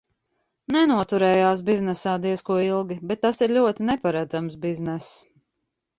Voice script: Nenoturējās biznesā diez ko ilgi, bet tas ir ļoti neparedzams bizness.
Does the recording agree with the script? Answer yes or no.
yes